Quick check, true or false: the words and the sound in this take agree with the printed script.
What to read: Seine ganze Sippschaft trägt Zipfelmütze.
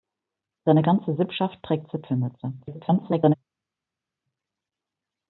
false